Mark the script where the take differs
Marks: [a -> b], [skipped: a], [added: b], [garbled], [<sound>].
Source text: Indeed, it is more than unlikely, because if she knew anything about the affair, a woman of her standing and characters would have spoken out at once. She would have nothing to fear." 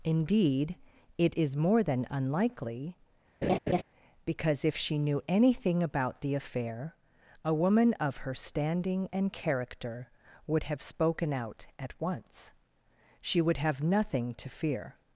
Indeed, it is more than unlikely, [laugh] because if she knew anything about the affair, a woman of her standing and [characters -> character] would have spoken out at once. She would have nothing to fear."